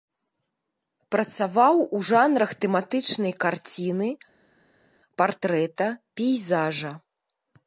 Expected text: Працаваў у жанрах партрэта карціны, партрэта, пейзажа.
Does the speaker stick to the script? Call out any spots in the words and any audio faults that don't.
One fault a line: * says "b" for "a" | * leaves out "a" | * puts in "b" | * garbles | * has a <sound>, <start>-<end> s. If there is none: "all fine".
* says "тэматычнай" for "партрэта"